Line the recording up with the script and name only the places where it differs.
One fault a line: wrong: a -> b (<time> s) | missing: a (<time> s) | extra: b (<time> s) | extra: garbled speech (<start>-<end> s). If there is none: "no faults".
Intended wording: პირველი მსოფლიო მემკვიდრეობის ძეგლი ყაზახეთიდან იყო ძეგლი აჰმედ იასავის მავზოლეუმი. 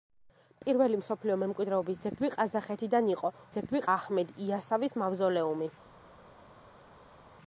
no faults